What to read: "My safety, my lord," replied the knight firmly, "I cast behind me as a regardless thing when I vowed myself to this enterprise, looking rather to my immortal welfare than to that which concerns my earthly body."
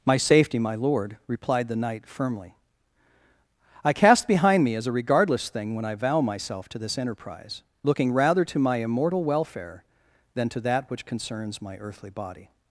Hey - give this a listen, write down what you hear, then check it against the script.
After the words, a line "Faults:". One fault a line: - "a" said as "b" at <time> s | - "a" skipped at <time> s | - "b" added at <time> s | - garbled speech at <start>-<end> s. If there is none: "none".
"My safety, my lord," replied the knight firmly, "I cast behind me as a regardless thing when I vow myself to this enterprise, looking rather to my immortal welfare than to that which concerns my earthly body."
Faults:
- "vowed" said as "vow" at 6.0 s